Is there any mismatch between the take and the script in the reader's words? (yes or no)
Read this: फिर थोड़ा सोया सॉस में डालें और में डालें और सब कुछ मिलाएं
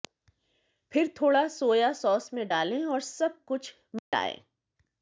yes